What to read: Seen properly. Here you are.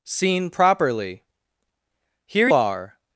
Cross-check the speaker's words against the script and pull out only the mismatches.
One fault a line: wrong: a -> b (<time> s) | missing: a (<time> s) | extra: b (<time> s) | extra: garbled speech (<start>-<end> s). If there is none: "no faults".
missing: you (2.5 s)